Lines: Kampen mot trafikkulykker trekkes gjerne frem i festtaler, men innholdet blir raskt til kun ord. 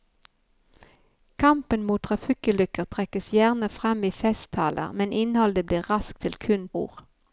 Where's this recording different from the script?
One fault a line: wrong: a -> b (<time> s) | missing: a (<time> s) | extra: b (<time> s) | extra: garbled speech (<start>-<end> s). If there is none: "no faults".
no faults